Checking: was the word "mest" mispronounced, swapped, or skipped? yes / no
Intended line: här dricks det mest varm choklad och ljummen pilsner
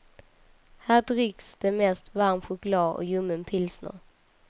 no